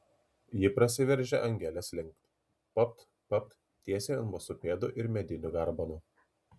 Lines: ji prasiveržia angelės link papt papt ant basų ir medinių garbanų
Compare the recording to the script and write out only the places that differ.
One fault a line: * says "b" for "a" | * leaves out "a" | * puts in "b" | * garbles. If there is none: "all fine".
* puts in "tiesiai"
* puts in "pėdų"